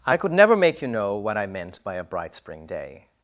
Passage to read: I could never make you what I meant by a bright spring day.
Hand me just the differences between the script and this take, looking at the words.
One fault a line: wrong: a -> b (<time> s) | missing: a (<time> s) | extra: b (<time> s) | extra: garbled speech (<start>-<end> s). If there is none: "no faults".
extra: know (0.9 s)